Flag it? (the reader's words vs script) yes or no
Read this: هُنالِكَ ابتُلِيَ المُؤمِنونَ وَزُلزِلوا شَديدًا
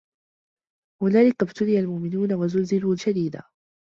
no